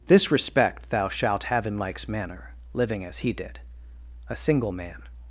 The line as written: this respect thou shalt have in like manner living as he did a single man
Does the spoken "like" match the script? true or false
false